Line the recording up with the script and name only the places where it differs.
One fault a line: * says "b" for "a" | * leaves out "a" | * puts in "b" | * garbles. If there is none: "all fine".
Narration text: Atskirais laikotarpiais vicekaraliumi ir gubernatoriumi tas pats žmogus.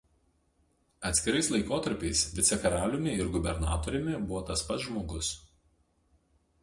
* puts in "buvo"